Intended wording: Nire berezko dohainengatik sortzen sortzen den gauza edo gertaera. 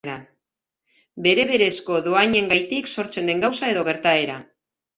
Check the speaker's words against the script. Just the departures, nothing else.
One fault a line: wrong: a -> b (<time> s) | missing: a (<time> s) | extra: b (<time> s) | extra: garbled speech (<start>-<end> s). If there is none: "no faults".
wrong: Nire -> Bere (1.3 s)
missing: sortzen (3.3 s)